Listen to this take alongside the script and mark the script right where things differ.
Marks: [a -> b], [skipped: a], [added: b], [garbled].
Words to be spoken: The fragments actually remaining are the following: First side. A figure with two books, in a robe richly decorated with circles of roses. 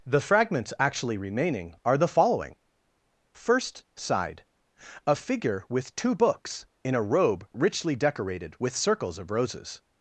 The fragments actually remaining are the following: First side. A figure with two books, in a robe richly decorated with circles of roses.